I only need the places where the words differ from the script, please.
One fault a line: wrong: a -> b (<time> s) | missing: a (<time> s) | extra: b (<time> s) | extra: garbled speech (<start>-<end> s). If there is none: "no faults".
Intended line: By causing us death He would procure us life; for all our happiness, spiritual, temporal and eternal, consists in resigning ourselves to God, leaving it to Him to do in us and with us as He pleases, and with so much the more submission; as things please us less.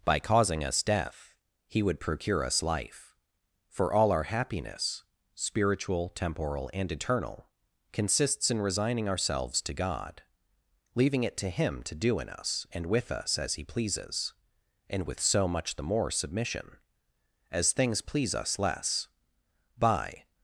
extra: By (19.8 s)